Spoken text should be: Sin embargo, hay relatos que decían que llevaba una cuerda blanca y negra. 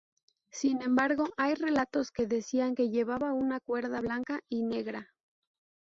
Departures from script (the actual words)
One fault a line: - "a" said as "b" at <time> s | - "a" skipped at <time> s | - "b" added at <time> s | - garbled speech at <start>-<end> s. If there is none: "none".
none